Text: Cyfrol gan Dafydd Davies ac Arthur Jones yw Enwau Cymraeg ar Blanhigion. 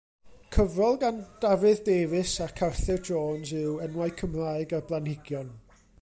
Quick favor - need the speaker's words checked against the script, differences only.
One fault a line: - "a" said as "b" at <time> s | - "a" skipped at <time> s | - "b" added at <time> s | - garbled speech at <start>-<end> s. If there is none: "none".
none